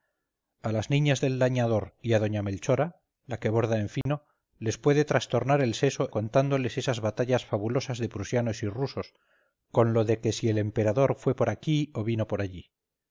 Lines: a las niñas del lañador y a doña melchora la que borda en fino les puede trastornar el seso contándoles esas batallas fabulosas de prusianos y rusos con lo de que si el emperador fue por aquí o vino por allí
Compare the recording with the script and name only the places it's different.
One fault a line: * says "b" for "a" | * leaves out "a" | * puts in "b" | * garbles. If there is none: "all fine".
all fine